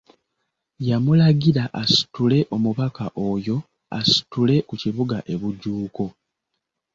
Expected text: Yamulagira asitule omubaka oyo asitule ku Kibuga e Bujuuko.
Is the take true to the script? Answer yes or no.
yes